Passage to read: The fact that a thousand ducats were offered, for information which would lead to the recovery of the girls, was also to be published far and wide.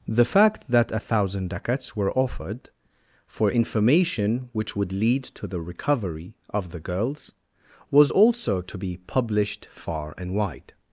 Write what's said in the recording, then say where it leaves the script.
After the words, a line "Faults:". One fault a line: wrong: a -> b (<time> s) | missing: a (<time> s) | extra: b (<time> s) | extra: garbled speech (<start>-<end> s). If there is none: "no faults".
The fact that a thousand ducats were offered, for information which would lead to the recovery of the girls, was also to be published far and wide.
Faults:
no faults